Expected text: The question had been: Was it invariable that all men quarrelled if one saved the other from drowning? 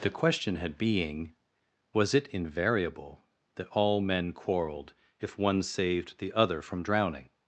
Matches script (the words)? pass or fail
fail